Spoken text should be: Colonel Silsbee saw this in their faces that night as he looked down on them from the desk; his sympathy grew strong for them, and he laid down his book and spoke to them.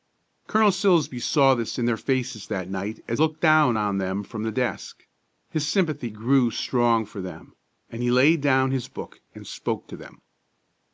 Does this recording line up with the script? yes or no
no